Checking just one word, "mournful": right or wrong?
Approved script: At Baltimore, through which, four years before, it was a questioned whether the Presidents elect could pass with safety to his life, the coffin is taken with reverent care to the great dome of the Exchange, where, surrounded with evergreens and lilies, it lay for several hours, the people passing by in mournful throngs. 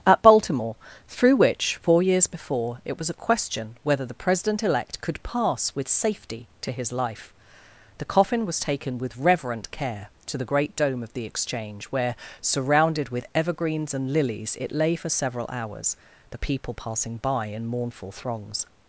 right